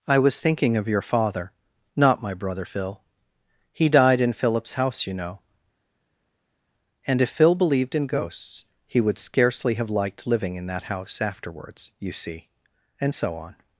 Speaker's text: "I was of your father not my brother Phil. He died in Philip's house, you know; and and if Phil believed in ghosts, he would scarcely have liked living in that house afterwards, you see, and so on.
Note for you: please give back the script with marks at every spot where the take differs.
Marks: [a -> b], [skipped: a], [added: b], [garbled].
"I was [added: thinking] of your father not my brother Phil. He died in Philip's house, you know; and [skipped: and] if Phil believed in ghosts, he would scarcely have liked living in that house afterwards, you see, and so on.